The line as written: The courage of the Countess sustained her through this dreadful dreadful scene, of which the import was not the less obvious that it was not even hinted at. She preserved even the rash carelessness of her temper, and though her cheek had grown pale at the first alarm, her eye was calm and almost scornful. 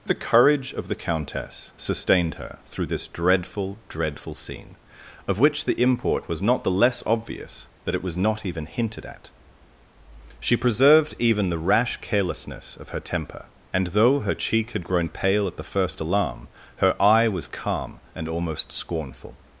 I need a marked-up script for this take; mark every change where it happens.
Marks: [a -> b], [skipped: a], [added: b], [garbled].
The courage of the Countess sustained her through this dreadful dreadful scene, of which the import was not the less obvious that it was not even hinted at. She preserved even the rash carelessness of her temper, and though her cheek had grown pale at the first alarm, her eye was calm and almost scornful.